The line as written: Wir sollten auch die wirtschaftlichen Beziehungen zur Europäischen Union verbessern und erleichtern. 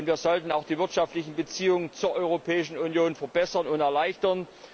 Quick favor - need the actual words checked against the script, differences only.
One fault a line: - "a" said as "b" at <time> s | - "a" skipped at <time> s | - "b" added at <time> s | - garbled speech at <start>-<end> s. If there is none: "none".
none